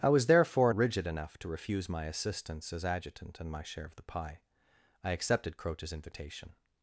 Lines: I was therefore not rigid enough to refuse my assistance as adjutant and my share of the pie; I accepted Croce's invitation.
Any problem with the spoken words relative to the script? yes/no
yes